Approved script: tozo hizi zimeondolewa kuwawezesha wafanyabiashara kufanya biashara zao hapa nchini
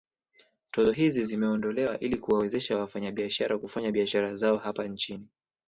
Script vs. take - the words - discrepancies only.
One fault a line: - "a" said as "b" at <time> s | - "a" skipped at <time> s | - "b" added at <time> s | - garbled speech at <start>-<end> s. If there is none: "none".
- "ili" added at 2.0 s